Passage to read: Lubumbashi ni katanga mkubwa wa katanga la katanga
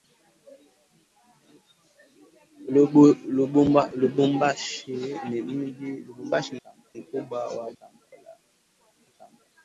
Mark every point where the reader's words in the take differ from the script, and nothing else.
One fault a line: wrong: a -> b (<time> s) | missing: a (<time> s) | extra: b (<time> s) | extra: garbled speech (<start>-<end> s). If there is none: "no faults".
no faults